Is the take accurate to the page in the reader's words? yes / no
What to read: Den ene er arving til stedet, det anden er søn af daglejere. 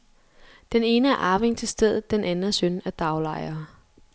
no